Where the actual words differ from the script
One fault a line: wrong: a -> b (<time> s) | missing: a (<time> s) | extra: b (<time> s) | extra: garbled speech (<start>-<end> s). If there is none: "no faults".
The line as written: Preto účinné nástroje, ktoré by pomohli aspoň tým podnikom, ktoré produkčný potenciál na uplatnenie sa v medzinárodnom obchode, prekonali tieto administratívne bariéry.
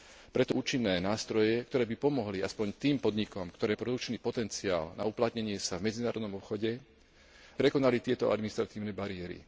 no faults